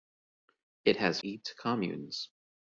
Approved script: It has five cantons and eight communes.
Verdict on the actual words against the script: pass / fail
fail